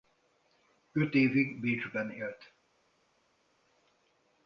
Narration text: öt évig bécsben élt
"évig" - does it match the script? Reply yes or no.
yes